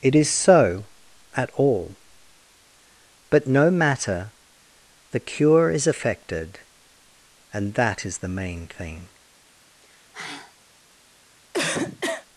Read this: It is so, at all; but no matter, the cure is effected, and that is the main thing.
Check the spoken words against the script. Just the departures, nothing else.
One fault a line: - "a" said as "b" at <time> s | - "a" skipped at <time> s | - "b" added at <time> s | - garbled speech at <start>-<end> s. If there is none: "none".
none